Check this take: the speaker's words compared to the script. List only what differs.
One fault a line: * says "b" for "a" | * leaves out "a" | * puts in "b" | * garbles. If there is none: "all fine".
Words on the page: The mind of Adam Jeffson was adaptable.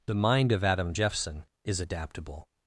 * says "is" for "was"